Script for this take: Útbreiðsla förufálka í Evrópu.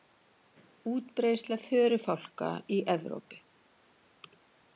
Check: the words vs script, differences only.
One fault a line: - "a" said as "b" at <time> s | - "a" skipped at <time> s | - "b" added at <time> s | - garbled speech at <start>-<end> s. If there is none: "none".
none